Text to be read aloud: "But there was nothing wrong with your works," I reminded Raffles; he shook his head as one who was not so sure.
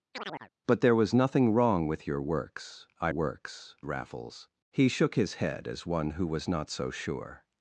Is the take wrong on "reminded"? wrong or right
wrong